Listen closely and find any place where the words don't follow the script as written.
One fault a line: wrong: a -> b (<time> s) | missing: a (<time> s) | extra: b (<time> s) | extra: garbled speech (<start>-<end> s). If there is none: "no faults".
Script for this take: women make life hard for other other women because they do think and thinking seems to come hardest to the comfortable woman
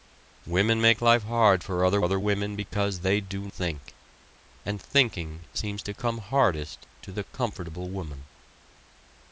no faults